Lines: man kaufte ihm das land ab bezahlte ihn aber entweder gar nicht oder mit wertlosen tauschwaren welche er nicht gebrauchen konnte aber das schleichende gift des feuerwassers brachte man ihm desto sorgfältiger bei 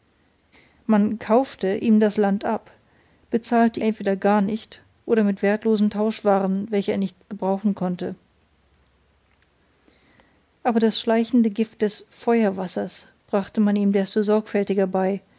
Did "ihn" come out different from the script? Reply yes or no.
yes